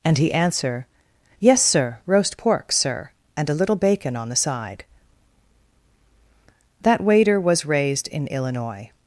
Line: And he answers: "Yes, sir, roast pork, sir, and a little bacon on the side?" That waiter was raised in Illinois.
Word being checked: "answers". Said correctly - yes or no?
no